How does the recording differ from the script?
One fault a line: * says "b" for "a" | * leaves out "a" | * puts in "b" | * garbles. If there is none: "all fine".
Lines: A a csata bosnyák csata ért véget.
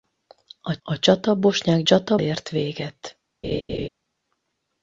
all fine